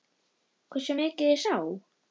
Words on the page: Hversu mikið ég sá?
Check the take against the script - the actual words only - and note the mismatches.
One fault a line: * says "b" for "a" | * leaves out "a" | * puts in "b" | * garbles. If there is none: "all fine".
all fine